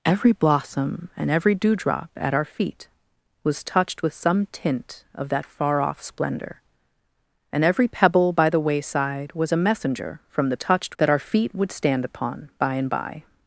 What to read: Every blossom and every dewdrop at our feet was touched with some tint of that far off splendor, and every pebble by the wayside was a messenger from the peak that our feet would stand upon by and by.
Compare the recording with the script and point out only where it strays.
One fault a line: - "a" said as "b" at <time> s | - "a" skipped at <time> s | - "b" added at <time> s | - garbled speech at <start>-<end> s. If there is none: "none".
- "peak" said as "touched" at 10.6 s